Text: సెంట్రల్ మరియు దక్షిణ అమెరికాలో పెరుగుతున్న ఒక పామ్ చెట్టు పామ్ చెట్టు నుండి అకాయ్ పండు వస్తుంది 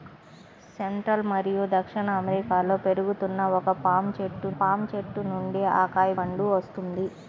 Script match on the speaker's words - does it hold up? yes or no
yes